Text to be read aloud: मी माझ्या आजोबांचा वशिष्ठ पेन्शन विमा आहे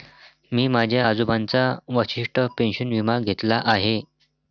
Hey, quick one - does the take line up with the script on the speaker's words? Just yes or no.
no